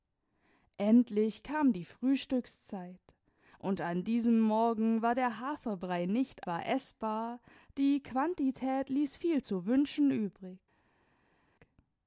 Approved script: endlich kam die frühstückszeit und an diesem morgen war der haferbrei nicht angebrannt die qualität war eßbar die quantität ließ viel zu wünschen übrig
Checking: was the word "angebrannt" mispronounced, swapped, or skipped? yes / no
yes